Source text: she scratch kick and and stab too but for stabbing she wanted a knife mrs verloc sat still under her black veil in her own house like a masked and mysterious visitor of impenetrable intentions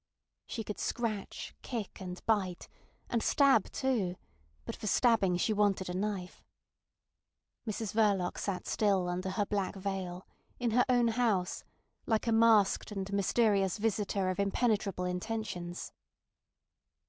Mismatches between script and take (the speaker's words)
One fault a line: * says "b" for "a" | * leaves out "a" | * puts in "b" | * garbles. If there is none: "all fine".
* puts in "could"
* puts in "bite"